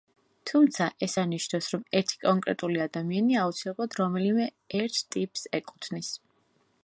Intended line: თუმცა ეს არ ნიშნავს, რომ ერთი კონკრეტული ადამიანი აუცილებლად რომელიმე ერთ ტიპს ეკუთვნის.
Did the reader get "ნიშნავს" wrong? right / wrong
right